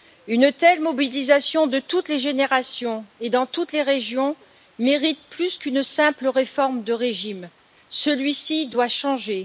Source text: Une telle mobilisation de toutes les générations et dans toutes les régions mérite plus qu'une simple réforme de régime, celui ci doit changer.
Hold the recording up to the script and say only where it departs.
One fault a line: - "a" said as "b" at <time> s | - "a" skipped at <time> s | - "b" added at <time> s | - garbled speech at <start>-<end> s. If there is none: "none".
none